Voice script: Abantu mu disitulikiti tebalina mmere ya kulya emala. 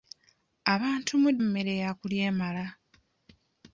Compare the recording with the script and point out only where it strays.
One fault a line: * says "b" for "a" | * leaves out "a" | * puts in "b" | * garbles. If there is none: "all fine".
* leaves out "disitulikiti tebalina"